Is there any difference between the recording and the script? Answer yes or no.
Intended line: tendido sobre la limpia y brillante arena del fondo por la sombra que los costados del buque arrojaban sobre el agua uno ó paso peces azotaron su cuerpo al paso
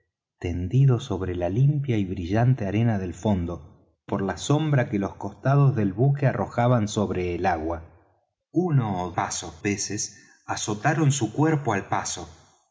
no